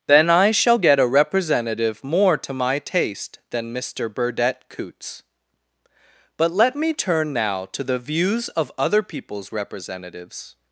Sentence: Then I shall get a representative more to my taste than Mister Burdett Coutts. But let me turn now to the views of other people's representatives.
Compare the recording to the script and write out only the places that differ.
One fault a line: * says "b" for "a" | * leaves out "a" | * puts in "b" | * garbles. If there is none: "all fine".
all fine